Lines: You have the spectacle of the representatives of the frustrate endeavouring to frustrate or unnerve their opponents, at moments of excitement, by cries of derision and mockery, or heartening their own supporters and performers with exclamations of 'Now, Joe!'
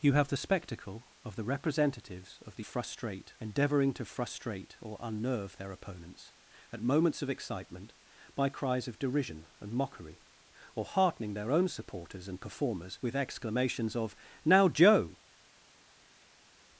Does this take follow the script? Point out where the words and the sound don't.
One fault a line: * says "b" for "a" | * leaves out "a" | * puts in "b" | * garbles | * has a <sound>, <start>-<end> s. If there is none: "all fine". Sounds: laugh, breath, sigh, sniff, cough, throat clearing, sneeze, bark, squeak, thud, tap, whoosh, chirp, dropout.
all fine